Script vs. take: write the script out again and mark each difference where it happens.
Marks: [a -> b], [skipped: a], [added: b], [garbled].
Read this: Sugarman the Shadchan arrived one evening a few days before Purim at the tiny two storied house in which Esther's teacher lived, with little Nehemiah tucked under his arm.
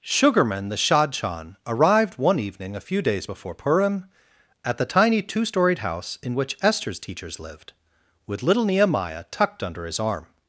Sugarman the Shadchan arrived one evening a few days before Purim at the tiny two storied house in which Esther's [teacher -> teachers] lived, with little Nehemiah tucked under his arm.